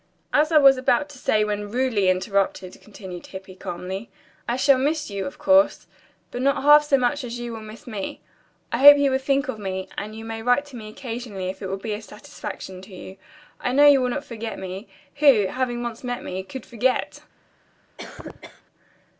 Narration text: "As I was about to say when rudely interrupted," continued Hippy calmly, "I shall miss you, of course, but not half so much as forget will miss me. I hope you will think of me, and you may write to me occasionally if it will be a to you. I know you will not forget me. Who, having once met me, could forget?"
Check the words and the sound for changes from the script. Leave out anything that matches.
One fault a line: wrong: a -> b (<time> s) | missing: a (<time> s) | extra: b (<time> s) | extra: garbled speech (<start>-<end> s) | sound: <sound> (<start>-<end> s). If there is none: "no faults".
wrong: forget -> you (7.4 s)
extra: satisfaction (12.0 s)
sound: cough (18.0-18.6 s)